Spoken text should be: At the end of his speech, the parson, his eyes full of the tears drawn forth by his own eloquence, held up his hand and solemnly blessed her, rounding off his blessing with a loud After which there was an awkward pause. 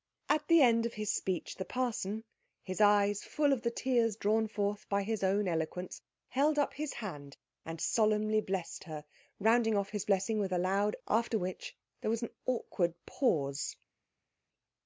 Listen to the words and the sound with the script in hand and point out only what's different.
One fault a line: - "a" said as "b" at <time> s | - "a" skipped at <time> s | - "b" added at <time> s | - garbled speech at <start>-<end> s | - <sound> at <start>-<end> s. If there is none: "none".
none